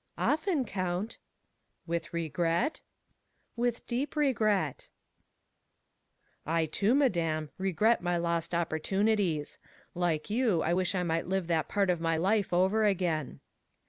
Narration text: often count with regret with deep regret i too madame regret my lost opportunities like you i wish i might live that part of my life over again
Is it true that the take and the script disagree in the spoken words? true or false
false